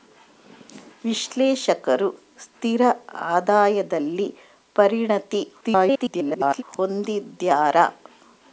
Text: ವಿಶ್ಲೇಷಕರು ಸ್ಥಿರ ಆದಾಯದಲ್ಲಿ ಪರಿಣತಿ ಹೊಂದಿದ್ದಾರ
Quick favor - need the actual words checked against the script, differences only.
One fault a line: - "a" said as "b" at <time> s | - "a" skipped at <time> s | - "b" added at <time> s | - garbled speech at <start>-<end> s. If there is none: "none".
- garbled speech at 5.6-6.6 s